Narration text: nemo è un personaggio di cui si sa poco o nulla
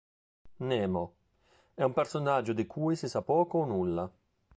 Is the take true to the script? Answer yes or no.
yes